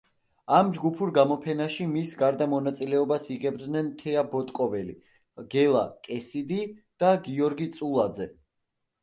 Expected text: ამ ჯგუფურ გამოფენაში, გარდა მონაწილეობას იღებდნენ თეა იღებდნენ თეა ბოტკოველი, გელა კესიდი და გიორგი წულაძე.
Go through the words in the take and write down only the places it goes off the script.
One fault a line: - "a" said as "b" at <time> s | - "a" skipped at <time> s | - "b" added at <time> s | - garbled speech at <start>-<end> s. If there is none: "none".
- "მის" added at 1.9 s
- "იღებდნენ თეა" skipped at 4.2 s